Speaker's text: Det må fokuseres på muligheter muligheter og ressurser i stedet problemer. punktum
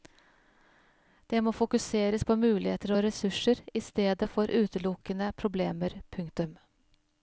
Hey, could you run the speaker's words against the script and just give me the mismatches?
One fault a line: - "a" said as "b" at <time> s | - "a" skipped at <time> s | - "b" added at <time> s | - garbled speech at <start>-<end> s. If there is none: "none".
- "muligheter" skipped at 3.0 s
- "for utelukkende" added at 4.4 s